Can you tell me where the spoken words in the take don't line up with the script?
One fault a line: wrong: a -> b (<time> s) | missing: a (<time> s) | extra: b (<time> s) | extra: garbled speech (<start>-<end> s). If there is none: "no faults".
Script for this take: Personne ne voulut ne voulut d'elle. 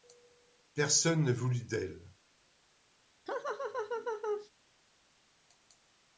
missing: ne voulut (1.6 s)